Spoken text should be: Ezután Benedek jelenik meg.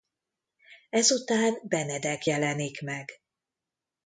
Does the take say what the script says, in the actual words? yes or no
yes